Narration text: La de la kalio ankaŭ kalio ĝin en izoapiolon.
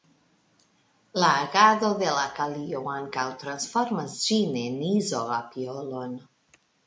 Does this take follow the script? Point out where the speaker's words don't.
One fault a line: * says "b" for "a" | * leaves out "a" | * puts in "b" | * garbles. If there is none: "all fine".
* puts in "agado"
* says "transformas" for "kalio"